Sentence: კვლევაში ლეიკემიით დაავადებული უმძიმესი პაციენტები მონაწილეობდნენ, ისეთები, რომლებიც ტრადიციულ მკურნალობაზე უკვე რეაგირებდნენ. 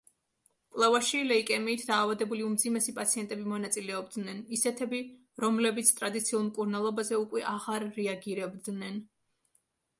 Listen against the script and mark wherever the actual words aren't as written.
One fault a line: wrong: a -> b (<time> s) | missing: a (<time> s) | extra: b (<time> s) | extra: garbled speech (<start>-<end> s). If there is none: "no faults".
extra: აღარ (7.5 s)